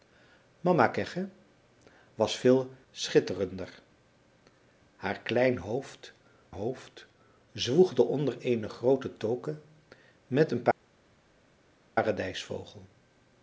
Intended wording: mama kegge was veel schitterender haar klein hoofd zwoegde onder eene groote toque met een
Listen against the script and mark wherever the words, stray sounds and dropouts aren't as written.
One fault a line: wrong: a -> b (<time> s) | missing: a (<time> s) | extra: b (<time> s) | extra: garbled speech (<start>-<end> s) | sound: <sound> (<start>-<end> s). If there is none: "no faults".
extra: hoofd (6.5 s)